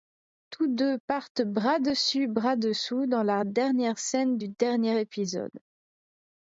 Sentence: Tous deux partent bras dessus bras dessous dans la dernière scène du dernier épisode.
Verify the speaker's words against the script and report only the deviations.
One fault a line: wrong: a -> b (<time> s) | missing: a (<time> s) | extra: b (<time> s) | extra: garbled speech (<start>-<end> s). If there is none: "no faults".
no faults